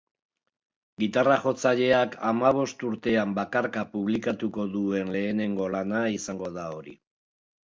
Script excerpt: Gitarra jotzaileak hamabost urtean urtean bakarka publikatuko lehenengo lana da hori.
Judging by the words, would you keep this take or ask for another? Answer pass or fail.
fail